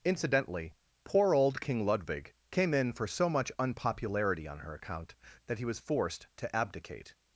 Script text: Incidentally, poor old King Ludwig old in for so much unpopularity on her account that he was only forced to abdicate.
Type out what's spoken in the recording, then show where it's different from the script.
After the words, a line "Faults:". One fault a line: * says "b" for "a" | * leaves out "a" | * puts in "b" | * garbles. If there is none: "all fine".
Incidentally, poor old King Ludwig came in for so much unpopularity on her account that he was forced to abdicate.
Faults:
* says "came" for "old"
* leaves out "only"